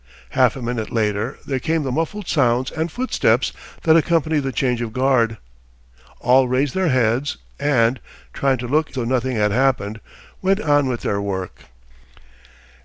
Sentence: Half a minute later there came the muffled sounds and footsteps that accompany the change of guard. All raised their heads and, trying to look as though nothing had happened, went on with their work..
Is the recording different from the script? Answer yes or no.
yes